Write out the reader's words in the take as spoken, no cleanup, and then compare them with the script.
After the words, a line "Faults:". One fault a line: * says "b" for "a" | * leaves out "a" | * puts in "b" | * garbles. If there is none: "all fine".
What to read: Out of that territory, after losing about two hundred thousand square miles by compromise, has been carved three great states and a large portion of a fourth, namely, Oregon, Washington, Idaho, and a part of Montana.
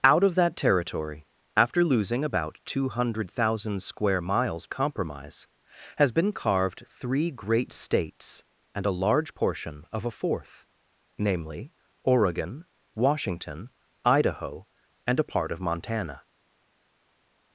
Out of that territory, after losing about two hundred thousand square miles compromise, has been carved three great states and a large portion of a fourth, namely, Oregon, Washington, Idaho, and a part of Montana.
Faults:
* leaves out "by"